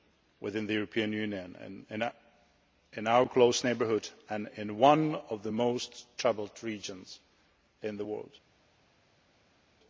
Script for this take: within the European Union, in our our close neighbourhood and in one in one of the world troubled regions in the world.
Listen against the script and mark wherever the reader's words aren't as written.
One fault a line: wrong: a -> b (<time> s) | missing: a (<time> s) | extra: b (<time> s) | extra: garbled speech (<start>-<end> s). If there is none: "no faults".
missing: our (3.2 s)
missing: in one (5.2 s)
wrong: world -> most (5.5 s)